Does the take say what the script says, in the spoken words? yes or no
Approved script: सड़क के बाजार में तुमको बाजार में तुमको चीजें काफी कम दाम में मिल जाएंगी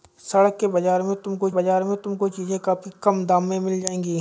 yes